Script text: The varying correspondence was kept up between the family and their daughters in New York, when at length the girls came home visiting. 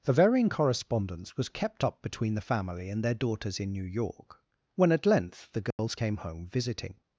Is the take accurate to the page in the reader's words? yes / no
yes